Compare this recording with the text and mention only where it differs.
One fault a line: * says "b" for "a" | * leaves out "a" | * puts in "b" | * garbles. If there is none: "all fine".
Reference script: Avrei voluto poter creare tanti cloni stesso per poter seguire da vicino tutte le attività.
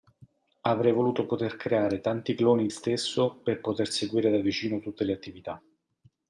all fine